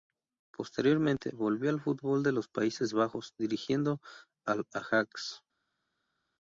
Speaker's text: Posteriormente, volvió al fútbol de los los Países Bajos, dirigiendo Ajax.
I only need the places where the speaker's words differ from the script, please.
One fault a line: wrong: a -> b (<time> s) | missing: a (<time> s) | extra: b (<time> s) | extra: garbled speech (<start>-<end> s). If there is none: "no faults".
missing: los (2.5 s)
extra: al (4.4 s)